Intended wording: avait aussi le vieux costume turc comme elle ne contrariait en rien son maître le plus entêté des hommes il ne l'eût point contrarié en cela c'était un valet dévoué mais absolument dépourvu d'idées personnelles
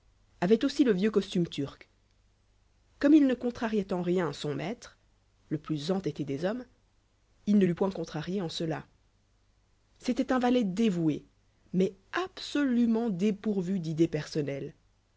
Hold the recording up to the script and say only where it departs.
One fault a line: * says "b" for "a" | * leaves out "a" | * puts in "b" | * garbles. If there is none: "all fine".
* says "il" for "elle"